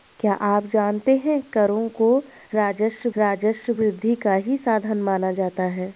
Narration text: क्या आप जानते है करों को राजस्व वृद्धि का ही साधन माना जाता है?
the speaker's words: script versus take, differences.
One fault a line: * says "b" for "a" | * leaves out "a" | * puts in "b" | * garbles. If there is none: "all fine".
* puts in "राजस्व"